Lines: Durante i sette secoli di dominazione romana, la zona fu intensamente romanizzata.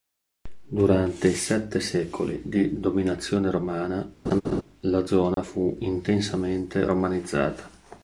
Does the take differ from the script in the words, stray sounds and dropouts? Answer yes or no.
yes